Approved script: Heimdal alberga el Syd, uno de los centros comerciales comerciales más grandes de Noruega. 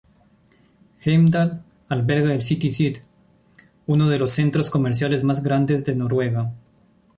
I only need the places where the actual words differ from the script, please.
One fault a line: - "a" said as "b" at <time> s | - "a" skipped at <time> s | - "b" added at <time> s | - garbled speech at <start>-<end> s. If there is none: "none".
- "City" added at 2.4 s
- "comerciales" skipped at 5.2 s